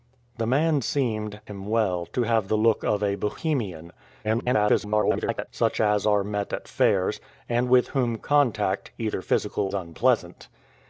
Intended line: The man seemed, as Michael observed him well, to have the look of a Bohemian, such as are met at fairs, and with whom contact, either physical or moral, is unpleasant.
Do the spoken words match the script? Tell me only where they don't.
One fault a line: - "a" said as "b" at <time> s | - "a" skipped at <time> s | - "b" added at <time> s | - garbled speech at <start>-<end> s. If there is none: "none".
- "as Michael observed" skipped at 1.4 s
- garbled speech at 4.2-5.5 s
- "or moral is" skipped at 9.7 s